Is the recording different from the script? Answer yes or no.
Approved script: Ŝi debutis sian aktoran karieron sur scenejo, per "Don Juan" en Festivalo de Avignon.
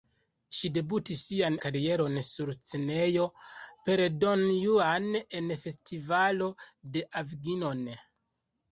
yes